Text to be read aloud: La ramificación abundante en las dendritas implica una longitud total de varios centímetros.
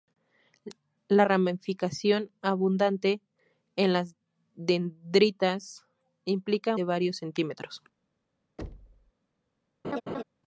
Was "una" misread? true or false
true